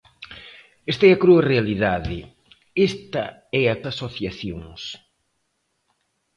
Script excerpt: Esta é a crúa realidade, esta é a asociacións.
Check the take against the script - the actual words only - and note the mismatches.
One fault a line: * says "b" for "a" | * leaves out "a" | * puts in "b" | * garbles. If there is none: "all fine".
all fine